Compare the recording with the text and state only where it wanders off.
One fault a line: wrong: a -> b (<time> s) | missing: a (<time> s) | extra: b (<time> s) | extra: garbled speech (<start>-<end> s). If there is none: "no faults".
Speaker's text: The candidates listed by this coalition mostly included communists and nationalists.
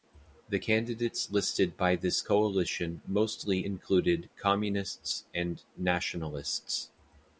no faults